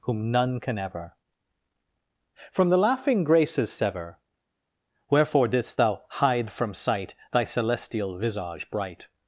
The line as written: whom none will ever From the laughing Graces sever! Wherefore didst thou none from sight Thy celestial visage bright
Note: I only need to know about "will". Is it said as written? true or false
false